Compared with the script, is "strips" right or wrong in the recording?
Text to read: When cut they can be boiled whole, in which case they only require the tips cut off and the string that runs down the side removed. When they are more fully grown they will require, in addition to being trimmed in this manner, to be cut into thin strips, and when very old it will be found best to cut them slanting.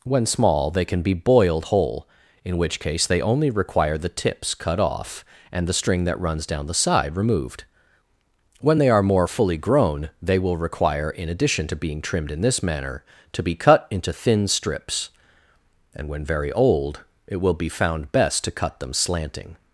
right